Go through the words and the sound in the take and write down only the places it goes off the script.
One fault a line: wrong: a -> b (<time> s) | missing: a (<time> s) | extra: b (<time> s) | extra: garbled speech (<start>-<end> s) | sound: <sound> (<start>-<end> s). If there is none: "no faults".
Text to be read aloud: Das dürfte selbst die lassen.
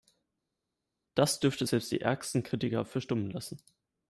extra: ärgsten Kritiker verstummen (2.0 s)